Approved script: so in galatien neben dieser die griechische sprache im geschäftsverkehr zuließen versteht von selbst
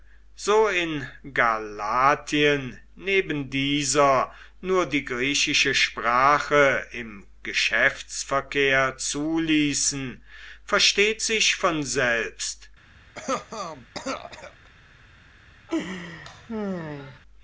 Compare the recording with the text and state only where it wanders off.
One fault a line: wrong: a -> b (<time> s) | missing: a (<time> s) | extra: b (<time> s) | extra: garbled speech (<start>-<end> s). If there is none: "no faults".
extra: nur (4.6 s)
extra: sich (11.2 s)